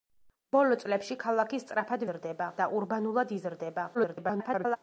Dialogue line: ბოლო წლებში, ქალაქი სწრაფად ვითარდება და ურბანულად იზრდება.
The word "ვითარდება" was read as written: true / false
false